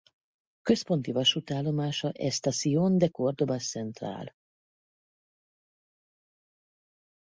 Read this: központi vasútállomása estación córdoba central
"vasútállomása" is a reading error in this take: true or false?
false